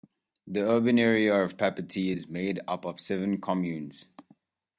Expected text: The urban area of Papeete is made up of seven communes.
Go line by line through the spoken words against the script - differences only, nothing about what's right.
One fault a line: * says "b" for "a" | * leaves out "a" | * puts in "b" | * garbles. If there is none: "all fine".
all fine